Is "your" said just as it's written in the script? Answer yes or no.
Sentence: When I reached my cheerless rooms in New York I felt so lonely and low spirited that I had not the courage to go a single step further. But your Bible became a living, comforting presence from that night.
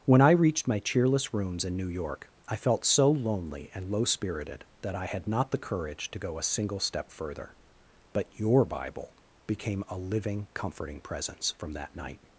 yes